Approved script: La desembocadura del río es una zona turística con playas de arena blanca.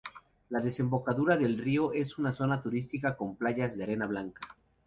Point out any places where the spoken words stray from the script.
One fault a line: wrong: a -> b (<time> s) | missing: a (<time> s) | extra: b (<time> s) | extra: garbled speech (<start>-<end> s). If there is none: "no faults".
no faults